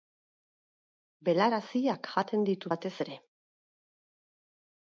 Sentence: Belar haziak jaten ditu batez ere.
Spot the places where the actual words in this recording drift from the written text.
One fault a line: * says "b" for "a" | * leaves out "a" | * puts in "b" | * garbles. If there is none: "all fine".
all fine